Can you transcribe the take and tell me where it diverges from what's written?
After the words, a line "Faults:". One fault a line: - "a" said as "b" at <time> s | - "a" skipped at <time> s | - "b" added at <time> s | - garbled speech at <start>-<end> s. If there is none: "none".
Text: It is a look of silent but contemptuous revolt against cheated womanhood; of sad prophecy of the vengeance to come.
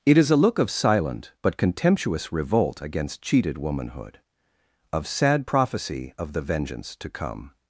It is a look of silent but contemptuous revolt against cheated womanhood; of sad prophecy of the vengeance to come.
Faults:
none